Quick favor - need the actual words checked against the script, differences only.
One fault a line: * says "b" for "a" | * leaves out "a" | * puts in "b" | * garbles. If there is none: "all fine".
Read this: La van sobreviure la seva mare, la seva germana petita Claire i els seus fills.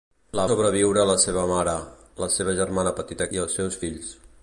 * leaves out "van"
* leaves out "Claire"